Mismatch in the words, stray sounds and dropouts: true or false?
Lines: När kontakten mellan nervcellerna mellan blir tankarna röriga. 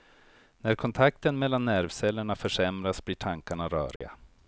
true